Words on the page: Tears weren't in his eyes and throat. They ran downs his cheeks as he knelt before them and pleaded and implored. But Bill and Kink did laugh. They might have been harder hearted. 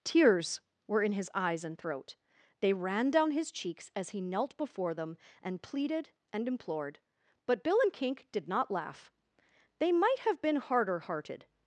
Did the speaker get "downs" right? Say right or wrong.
wrong